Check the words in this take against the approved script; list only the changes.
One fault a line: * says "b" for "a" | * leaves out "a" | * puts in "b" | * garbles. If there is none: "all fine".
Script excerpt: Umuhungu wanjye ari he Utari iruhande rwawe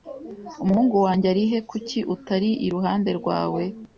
* puts in "Kuki"